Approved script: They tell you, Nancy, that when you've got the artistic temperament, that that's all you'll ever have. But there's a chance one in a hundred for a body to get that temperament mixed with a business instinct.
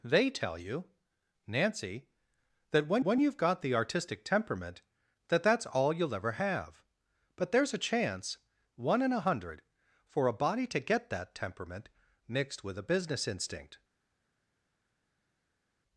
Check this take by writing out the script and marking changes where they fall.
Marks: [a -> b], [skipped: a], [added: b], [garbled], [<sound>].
They tell you, Nancy, that when [added: when] you've got the artistic temperament, that that's all you'll ever have. But there's a chance one in a hundred for a body to get that temperament mixed with a business instinct.